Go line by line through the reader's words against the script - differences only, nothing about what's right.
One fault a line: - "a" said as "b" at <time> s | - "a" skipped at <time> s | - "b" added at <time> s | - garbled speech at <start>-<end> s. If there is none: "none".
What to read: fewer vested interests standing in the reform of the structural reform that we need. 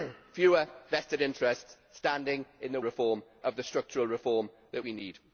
none